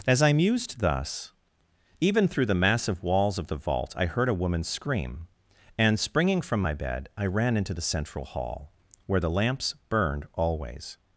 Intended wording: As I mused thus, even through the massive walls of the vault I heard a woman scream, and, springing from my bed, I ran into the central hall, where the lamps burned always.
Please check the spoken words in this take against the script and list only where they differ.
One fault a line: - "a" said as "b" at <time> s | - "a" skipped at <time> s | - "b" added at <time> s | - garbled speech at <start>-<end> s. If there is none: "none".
none